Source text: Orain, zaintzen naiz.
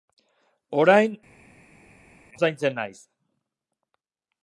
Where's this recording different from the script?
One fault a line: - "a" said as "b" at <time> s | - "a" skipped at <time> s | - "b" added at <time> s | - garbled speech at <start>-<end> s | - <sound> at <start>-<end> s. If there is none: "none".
none